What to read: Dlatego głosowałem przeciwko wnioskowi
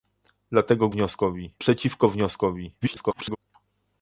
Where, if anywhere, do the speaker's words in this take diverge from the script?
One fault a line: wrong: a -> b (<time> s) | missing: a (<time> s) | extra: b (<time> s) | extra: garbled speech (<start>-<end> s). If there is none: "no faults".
wrong: głosowałem -> wnioskowi (0.9 s)
extra: garbled speech (2.8-3.4 s)